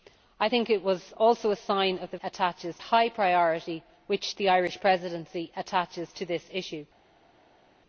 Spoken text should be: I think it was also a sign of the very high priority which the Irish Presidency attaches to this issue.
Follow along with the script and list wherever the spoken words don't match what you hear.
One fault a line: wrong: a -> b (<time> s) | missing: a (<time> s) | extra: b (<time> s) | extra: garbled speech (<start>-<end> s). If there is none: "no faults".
wrong: very -> attaches (2.2 s)